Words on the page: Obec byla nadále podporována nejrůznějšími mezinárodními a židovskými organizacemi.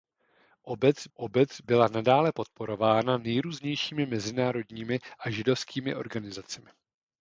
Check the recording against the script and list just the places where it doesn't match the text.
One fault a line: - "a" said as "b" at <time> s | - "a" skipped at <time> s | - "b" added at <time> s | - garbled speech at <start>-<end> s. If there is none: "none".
- "obec" added at 1.1 s